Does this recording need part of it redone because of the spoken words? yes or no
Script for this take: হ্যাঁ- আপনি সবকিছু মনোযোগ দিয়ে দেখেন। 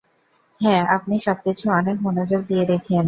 yes